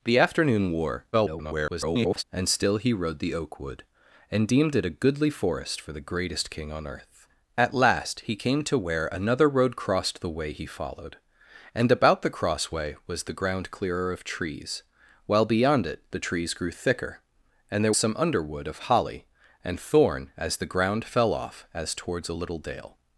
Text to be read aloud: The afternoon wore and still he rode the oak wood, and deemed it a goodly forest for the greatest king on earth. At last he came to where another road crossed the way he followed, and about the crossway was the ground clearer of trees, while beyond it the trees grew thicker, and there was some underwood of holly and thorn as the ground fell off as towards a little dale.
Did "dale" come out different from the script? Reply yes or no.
no